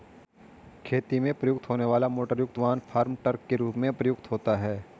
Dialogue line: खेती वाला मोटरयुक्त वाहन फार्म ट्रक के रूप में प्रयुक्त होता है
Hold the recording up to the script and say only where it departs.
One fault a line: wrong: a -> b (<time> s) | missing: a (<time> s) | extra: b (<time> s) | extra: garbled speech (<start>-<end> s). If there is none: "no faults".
extra: में प्रयुक्त होने (1.2 s)